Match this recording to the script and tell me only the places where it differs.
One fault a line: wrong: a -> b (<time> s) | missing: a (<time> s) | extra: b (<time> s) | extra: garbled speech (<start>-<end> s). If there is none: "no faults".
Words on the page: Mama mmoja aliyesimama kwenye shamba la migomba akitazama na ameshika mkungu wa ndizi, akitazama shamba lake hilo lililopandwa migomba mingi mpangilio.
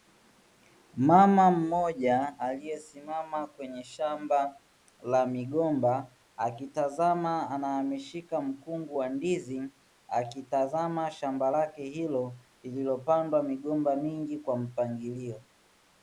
extra: kwa (14.4 s)